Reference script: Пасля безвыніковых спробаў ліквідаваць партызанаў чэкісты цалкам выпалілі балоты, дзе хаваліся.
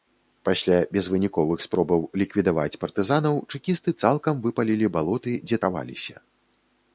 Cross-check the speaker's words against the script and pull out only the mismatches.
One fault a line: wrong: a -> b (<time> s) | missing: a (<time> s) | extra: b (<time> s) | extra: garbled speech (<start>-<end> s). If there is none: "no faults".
no faults